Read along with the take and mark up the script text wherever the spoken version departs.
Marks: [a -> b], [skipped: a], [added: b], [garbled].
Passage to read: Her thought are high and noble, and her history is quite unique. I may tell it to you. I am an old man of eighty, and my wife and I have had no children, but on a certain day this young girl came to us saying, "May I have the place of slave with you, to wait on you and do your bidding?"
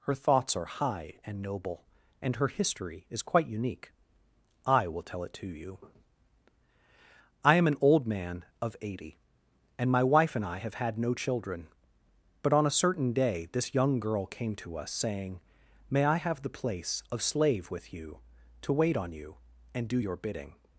Her [thought -> thoughts] are high and noble, and her history is quite unique. I [may -> will] tell it to you. I am an old man of eighty, and my wife and I have had no children, but on a certain day this young girl came to us saying, "May I have the place of slave with you, to wait on you and do your bidding?"